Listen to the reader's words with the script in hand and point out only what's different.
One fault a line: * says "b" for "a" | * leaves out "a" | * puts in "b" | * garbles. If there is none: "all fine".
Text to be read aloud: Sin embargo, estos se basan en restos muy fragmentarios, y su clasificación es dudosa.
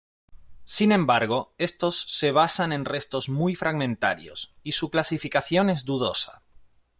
all fine